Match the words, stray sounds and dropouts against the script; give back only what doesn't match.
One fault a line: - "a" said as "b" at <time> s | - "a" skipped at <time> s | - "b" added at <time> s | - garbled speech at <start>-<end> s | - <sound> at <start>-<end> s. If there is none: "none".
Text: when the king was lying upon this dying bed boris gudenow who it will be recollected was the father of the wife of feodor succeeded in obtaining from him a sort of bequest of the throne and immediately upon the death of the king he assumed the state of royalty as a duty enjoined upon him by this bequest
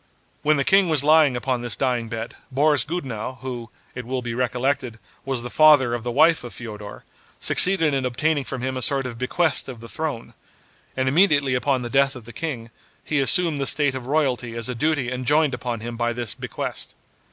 none